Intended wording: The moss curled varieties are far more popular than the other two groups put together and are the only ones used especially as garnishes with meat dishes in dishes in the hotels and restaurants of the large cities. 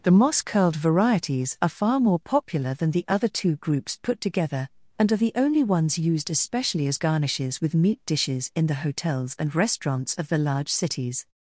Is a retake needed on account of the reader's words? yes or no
yes